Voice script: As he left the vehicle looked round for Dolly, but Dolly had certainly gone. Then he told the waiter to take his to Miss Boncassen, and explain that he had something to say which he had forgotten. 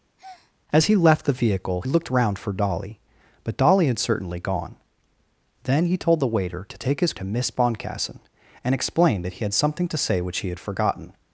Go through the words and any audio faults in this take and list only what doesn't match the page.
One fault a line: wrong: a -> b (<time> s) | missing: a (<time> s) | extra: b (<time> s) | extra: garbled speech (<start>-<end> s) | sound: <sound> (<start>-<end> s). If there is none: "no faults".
sound: breath (0.2-0.5 s)